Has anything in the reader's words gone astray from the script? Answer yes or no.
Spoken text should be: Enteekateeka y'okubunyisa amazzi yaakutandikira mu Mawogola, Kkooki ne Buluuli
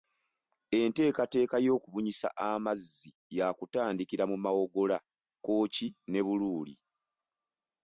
no